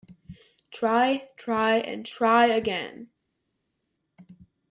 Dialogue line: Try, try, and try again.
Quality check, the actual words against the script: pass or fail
pass